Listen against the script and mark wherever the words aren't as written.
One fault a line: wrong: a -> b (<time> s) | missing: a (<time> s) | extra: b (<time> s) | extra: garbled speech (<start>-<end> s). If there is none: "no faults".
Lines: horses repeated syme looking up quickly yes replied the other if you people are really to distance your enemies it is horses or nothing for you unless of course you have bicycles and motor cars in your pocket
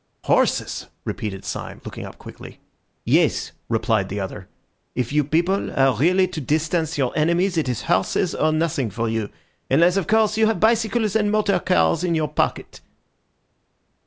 no faults